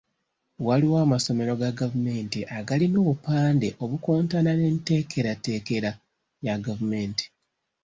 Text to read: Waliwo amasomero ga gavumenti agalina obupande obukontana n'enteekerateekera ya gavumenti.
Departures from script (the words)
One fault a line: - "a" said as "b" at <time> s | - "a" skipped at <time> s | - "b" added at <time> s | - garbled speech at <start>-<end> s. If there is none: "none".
none